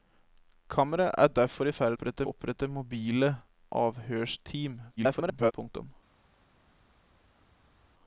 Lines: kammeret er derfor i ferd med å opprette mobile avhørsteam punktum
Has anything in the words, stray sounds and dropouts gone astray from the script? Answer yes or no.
yes